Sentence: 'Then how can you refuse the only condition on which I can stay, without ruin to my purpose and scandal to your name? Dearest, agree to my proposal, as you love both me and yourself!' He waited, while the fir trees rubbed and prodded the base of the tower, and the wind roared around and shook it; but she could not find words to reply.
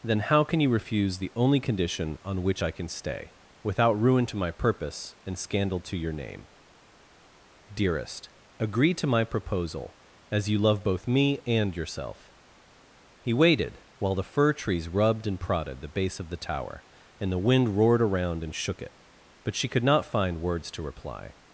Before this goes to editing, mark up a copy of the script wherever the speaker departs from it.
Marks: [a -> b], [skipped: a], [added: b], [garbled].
'Then how can you refuse the only condition on which I can stay, without ruin to my purpose and scandal to your name? Dearest, agree to my proposal, as you love both me and yourself!' He waited, while the fir trees rubbed and prodded the base of the tower, and the wind roared around and shook it; but she could not find words to reply.